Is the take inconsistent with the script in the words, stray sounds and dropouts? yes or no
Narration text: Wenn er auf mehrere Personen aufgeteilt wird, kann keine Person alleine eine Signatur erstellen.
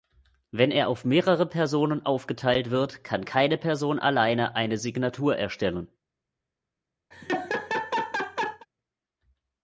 yes